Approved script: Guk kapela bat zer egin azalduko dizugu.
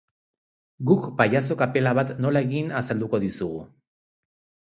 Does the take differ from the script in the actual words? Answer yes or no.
yes